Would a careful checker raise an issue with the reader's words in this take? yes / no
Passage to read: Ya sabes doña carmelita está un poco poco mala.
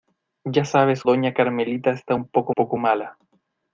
no